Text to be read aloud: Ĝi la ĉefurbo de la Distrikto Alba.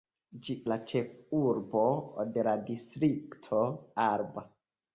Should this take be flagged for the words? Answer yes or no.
no